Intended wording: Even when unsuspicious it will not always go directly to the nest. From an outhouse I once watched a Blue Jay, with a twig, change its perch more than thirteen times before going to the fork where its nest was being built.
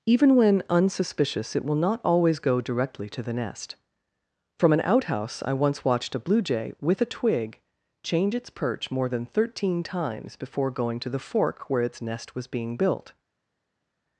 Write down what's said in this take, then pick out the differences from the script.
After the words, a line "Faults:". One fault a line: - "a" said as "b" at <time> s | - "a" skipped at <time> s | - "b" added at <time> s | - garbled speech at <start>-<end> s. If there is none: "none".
Even when unsuspicious it will not always go directly to the nest. From an outhouse I once watched a Blue Jay, with a twig, change its perch more than thirteen times before going to the fork where its nest was being built.
Faults:
none